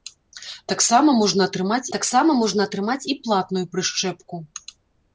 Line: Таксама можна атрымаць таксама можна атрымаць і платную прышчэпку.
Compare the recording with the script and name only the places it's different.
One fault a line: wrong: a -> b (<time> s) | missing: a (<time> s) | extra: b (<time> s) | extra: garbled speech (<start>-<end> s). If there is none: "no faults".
no faults